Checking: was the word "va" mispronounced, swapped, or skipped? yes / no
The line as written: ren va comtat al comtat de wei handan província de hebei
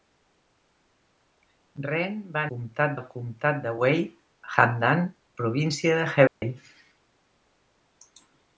no